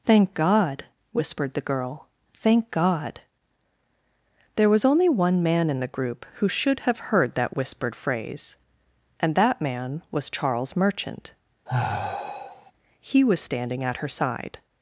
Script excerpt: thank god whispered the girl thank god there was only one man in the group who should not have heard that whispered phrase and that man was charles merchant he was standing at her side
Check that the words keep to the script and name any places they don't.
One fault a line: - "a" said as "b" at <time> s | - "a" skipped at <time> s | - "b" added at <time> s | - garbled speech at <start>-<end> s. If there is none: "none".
- "not" skipped at 6.8 s